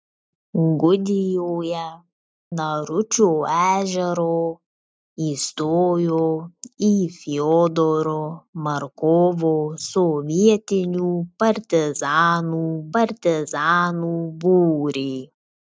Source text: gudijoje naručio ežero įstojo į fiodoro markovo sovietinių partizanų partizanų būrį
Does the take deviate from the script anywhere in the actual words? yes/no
no